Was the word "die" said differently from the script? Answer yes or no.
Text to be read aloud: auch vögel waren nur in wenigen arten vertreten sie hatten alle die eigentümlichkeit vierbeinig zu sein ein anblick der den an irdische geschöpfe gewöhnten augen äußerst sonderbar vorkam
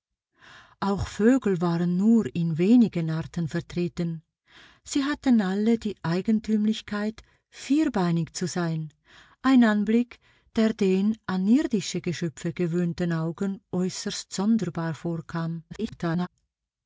no